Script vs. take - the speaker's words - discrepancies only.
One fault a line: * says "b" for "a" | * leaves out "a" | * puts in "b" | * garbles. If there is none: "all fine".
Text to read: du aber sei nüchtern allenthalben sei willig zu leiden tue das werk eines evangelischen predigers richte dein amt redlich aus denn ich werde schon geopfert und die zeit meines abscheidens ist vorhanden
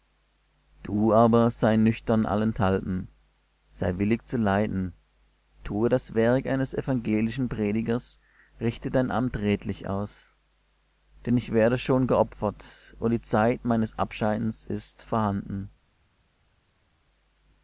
all fine